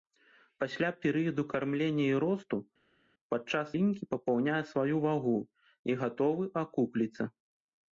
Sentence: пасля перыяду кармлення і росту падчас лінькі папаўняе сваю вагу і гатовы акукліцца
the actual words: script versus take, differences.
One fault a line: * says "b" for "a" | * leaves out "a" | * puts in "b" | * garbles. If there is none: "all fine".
all fine